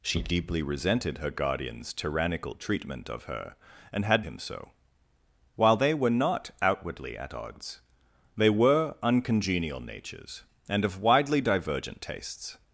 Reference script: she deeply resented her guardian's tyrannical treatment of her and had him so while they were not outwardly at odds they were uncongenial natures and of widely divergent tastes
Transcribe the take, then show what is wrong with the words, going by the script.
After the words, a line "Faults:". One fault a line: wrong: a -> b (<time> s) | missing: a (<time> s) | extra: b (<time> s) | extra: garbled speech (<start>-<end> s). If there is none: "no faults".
she deeply resented her guardian's tyrannical treatment of her and had him so while they were not outwardly at odds they were uncongenial natures and of widely divergent tastes
Faults:
no faults